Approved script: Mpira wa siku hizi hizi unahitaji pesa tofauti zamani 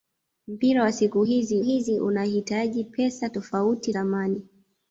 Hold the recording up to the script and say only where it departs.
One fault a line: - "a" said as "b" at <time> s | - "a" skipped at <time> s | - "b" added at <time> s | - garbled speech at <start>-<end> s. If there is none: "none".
none